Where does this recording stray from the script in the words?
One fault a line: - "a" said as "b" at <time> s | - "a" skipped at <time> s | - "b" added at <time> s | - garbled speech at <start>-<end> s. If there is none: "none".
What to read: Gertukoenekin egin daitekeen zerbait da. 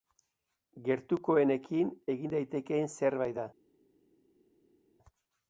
none